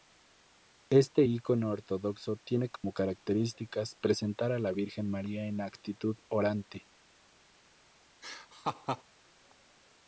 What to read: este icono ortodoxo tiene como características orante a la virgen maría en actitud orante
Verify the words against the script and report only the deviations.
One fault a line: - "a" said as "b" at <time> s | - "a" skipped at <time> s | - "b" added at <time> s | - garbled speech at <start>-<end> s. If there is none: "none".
- "orante" said as "presentar" at 4.0 s